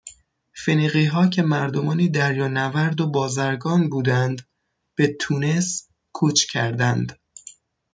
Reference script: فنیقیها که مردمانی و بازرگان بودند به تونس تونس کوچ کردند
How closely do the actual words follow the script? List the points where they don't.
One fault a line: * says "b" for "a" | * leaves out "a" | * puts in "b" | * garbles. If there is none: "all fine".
* puts in "دریانورد"
* leaves out "تونس"